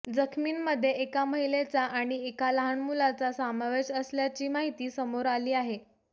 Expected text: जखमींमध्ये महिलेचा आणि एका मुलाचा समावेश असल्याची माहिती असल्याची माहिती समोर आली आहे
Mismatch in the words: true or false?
true